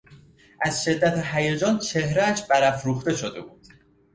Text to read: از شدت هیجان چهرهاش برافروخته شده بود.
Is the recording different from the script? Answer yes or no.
no